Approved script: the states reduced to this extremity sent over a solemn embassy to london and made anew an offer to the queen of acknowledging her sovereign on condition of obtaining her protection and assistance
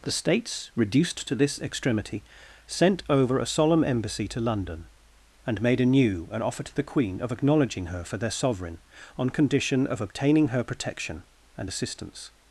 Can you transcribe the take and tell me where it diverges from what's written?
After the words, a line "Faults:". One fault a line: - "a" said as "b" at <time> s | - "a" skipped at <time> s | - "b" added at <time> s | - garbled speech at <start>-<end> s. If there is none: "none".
the states reduced to this extremity sent over a solemn embassy to london and made anew an offer to the queen of acknowledging her for their sovereign on condition of obtaining her protection and assistance
Faults:
- "for their" added at 8.0 s